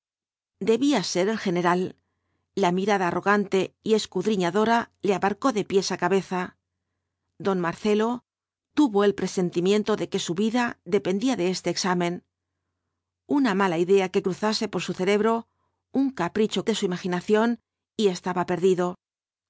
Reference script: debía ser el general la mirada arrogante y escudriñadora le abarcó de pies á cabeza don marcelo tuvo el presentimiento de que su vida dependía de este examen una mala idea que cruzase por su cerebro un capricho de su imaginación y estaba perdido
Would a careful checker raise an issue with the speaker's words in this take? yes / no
no